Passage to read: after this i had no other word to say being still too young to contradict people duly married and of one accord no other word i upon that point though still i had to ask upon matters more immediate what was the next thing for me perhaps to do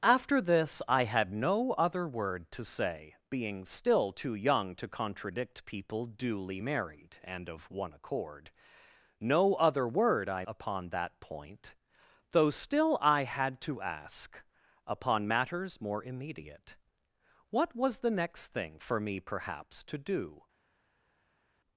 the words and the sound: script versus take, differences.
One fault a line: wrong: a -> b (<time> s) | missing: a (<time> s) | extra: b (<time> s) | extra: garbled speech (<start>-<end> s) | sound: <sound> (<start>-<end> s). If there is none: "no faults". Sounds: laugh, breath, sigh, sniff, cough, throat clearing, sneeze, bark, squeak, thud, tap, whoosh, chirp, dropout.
no faults